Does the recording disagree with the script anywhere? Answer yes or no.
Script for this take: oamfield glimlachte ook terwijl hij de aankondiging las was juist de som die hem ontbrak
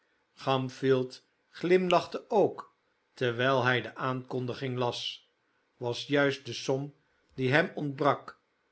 no